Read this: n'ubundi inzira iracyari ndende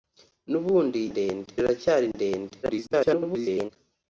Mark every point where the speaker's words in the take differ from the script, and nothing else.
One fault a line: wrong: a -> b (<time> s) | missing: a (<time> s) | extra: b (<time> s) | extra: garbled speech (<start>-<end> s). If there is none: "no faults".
wrong: inzira -> ndende (1.1 s)
extra: garbled speech (2.6-3.7 s)